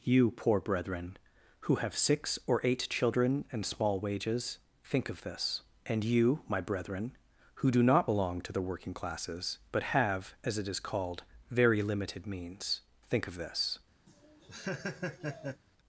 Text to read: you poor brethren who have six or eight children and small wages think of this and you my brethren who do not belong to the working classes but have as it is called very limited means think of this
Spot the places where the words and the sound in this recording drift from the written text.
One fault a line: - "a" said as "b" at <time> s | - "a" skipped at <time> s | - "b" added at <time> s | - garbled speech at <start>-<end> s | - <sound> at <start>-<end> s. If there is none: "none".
- laugh at 14.1-15.6 s